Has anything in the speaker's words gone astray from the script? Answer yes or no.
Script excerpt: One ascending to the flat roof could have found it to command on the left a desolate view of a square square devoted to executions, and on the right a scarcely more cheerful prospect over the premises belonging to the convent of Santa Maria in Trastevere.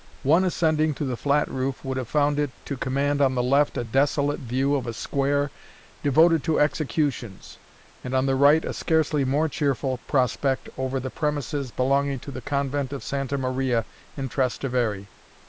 yes